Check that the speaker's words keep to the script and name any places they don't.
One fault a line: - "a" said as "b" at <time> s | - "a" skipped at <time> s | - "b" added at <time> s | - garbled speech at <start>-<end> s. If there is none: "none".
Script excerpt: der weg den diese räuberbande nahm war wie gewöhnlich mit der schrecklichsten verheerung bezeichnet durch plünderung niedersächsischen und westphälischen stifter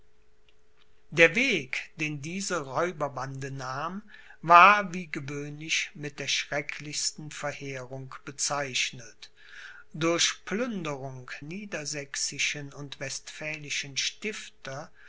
none